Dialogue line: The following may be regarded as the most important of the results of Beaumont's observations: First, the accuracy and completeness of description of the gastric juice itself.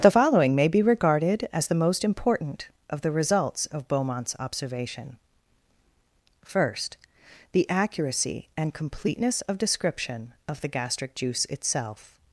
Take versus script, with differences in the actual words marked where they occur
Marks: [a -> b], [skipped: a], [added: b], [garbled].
The following may be regarded as the most important of the results of Beaumont's [observations: -> observation] First, the accuracy and completeness of description of the gastric juice itself.